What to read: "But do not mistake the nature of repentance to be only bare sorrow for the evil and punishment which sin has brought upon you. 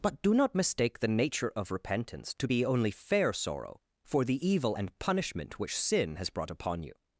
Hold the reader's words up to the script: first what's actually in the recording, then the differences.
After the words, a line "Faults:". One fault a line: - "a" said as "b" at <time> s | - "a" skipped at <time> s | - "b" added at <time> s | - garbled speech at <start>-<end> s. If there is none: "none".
"But do not mistake the nature of repentance to be only fair sorrow for the evil and punishment which sin has brought upon you.
Faults:
- "bare" said as "fair" at 2.9 s